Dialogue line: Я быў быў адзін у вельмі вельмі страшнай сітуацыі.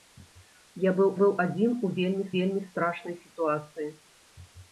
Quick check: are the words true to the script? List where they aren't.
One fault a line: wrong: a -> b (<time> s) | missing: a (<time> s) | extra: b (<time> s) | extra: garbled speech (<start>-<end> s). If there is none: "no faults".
no faults